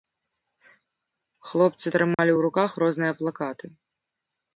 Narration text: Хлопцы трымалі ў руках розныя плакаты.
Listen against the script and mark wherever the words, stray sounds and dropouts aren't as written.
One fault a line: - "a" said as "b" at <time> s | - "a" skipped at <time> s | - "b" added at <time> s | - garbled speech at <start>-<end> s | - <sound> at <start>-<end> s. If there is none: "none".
- dropout at 2.1-2.2 s